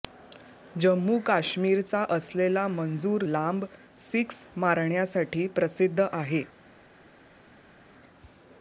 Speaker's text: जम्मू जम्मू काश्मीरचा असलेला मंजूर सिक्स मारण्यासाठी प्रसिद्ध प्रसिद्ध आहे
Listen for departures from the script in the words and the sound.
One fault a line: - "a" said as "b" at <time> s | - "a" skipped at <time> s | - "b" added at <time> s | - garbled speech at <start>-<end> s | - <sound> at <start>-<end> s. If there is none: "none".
- "जम्मू" skipped at 1.2 s
- "लांब" added at 3.3 s
- "प्रसिद्ध" skipped at 6.0 s